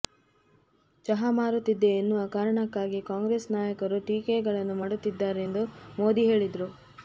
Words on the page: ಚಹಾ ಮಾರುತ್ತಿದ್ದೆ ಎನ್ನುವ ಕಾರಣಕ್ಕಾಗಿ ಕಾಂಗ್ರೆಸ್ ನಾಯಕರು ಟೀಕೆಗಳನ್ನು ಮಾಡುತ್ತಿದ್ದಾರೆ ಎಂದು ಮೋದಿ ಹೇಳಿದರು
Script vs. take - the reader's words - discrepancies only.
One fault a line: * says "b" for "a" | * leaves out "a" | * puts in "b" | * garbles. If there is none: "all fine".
all fine